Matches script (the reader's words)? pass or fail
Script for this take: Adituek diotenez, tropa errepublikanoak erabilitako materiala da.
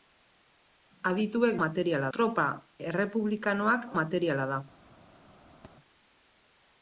fail